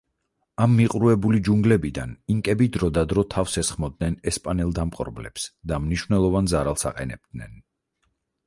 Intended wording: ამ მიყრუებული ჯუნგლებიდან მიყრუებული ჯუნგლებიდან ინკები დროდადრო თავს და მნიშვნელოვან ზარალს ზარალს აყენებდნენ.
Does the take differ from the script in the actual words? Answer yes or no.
yes